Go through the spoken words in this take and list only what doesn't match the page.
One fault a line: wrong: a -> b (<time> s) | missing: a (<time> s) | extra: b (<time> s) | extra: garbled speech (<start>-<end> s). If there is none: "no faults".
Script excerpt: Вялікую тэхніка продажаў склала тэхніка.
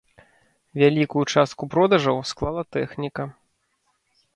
wrong: тэхніка -> частку (1.4 s)